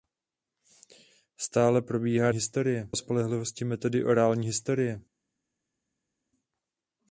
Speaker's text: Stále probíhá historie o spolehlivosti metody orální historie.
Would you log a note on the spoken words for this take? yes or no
no